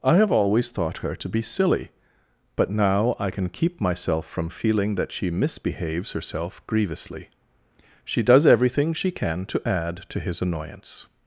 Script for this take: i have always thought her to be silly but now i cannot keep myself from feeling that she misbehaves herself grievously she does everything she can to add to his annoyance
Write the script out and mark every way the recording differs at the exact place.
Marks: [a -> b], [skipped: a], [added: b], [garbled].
i have always thought her to be silly but now i [cannot -> can] keep myself from feeling that she misbehaves herself grievously she does everything she can to add to his annoyance